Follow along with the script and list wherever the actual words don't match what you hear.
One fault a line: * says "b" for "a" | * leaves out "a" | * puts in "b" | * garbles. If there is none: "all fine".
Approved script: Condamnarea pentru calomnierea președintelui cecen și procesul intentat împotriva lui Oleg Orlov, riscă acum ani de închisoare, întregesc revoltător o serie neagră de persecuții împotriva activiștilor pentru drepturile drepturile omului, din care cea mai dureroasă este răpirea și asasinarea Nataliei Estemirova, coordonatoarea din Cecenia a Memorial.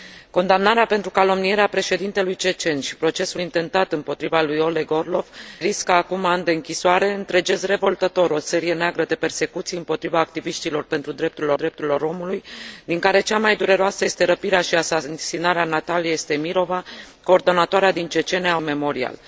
all fine